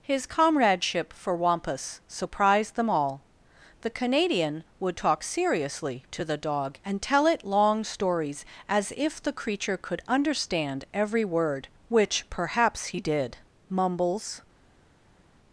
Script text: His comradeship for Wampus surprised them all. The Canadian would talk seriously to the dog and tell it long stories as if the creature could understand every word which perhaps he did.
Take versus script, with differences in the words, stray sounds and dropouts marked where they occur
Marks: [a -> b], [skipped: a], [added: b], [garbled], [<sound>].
His comradeship for Wampus surprised them all. The Canadian would talk seriously to the dog and tell it long stories as if the creature could understand every word which perhaps he did. [added: Mumbles]